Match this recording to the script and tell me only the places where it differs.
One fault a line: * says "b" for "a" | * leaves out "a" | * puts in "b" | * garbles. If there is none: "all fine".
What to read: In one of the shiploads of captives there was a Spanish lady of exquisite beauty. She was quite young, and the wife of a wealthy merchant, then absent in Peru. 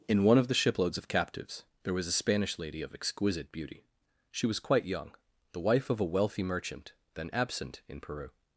* leaves out "and"